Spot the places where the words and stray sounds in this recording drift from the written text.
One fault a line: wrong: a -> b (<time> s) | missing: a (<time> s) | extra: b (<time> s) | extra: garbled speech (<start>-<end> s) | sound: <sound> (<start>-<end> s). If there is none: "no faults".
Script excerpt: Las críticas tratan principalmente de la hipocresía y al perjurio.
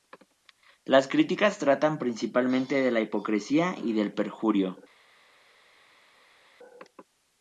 wrong: al -> del (3.9 s)